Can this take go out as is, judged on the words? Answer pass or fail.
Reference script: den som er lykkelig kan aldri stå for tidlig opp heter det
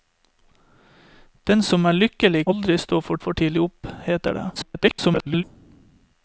fail